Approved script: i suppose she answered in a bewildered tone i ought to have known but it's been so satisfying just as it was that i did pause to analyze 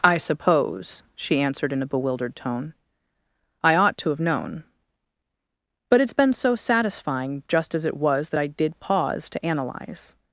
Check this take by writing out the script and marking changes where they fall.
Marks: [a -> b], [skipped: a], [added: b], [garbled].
i suppose she answered in a bewildered tone i ought to have known but it's been so satisfying just as it was that i did pause to analyze